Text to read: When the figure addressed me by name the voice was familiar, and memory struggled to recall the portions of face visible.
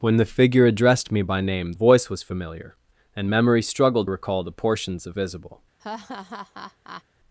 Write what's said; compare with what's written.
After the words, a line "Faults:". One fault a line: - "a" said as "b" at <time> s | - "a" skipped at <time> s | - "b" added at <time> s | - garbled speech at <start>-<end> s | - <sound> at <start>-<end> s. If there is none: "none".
When the figure addressed me by name voice was familiar, and memory struggled recall the portions of visible.
Faults:
- "the" skipped at 1.7 s
- "to" skipped at 4.1 s
- "face" skipped at 5.2 s
- laugh at 5.8-7.0 s